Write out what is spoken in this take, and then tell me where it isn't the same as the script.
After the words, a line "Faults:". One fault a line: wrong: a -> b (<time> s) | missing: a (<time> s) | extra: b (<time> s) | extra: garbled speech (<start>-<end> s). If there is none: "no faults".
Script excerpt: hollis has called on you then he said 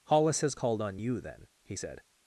hollis has called on you then he said
Faults:
no faults